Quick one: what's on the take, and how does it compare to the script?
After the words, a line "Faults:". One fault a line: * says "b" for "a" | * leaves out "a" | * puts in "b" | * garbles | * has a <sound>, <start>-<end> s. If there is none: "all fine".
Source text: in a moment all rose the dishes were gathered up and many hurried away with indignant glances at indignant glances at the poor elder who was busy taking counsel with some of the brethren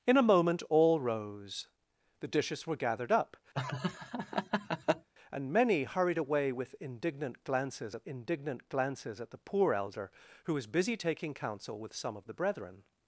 in a moment all rose the dishes were gathered up and many hurried away with indignant glances at indignant glances at the poor elder who was busy taking counsel with some of the brethren
Faults:
* has a laugh, 3.5-5.1 s